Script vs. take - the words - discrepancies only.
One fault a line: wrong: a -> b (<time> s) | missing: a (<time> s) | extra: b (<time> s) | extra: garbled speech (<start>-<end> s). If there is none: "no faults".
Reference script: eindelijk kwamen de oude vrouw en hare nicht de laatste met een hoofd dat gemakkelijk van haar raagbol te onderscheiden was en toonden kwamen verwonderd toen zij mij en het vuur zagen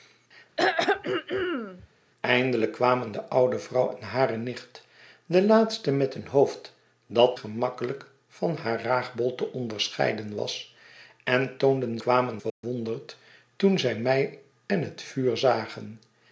no faults